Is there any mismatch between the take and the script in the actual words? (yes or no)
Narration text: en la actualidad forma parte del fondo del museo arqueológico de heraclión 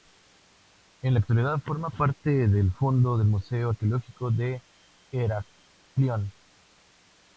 no